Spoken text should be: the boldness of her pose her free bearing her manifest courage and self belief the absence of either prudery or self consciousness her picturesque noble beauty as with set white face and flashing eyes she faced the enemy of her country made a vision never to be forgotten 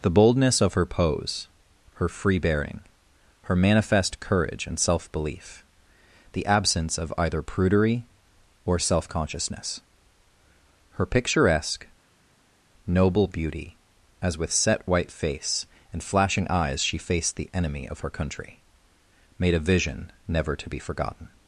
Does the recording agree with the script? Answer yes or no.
yes